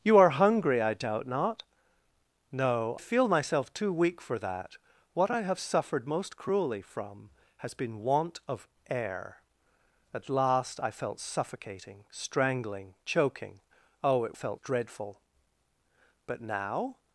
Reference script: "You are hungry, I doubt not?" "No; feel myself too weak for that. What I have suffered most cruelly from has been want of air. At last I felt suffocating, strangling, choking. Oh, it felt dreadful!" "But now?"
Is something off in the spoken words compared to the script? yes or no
no